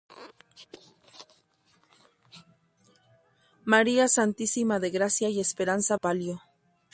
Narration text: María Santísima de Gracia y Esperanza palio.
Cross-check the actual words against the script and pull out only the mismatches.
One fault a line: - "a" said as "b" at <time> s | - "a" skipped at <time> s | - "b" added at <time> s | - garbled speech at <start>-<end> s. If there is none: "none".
none